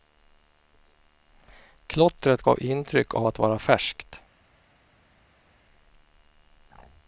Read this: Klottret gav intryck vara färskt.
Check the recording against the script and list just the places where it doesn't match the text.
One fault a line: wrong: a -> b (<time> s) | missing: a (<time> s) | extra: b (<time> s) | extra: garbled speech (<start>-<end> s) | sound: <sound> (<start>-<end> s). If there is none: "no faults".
extra: av att (3.1 s)